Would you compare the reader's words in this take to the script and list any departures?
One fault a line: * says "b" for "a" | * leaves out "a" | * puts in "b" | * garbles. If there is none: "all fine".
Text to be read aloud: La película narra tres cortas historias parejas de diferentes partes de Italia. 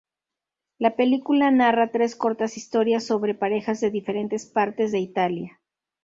* puts in "sobre"